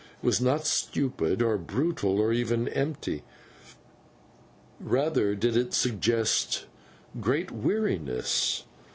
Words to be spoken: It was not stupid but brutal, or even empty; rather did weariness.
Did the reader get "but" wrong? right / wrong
wrong